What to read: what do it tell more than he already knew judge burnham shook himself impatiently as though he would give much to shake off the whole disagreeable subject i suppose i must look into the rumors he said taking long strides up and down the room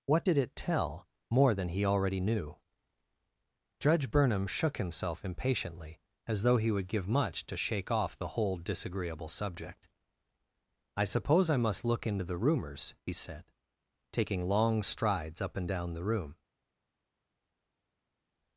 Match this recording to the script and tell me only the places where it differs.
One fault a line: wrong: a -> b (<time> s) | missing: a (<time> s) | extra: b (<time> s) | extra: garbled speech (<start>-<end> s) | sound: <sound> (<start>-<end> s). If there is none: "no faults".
wrong: do -> did (0.2 s)